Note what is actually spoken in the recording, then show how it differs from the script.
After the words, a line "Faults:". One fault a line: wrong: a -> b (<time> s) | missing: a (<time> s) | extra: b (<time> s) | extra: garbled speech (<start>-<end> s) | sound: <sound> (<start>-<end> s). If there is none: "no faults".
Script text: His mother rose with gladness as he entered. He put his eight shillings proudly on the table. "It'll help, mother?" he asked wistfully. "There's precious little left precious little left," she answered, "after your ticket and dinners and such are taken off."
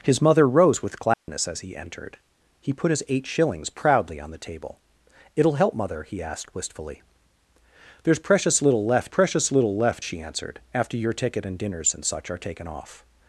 His mother rose with gladness as he entered. He put his eight shillings proudly on the table. "It'll help, mother?" he asked wistfully. "There's precious little left precious little left," she answered, "after your ticket and dinners and such are taken off."
Faults:
sound: dropout (1.1-1.3 s)